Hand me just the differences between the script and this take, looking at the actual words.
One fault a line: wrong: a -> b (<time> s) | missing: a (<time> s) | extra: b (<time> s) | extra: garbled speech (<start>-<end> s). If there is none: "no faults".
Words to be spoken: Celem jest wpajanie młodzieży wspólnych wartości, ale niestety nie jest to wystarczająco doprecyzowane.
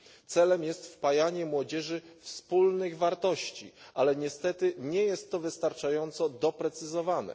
no faults